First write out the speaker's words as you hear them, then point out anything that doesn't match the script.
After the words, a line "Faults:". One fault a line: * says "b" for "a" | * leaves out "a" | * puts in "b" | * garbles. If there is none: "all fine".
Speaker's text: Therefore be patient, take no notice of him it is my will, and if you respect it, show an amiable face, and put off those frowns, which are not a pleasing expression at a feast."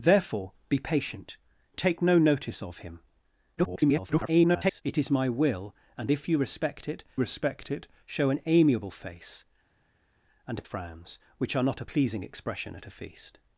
Therefore be patient, take no notice of him [garbled] it is my will, and if you respect it respect it, show an amiable face, and frowns, which are not a pleasing expression at a feast."
Faults:
* garbles
* puts in "respect it"
* leaves out "put off those"